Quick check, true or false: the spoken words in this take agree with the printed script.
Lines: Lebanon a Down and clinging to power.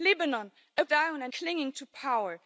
true